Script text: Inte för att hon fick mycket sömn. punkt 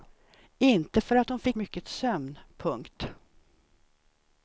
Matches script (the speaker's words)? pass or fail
pass